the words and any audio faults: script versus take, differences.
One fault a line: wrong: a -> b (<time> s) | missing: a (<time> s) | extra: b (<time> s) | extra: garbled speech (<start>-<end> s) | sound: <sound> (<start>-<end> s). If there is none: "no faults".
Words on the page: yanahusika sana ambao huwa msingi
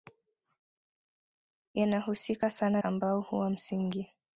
no faults